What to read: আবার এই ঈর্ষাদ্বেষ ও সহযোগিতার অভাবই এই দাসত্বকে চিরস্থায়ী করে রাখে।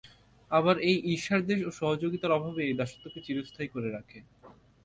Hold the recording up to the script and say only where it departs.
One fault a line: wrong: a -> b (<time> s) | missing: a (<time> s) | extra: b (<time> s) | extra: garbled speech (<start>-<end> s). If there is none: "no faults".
no faults